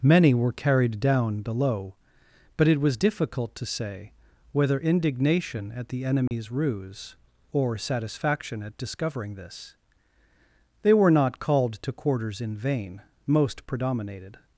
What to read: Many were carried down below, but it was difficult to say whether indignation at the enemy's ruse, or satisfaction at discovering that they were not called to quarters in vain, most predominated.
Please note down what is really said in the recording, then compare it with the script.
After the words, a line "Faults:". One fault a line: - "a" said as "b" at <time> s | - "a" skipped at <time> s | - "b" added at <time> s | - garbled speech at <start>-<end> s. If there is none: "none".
Many were carried down below, but it was difficult to say whether indignation at the enemy's ruse, or satisfaction at discovering this they were not called to quarters in vain, most predominated.
Faults:
- "that" said as "this" at 9.3 s